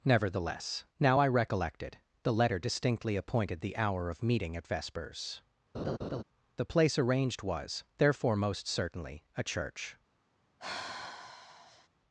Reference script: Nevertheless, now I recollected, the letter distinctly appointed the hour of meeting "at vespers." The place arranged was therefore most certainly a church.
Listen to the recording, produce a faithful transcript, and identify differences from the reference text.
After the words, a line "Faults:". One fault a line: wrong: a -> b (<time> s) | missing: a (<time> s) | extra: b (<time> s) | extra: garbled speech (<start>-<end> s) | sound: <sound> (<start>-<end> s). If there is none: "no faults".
Nevertheless, now I recollected, the letter distinctly appointed the hour of meeting "at vespers." The place arranged was therefore most certainly a church.
Faults:
sound: laugh (5.7-6.2 s)
sound: sigh (10.6-11.9 s)